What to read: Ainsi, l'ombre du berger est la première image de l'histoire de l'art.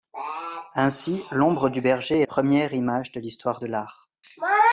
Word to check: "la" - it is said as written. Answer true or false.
false